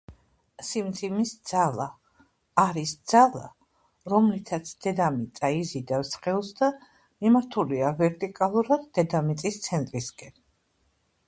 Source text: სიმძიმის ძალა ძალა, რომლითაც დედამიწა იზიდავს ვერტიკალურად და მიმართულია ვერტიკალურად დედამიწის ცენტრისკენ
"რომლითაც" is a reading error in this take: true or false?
false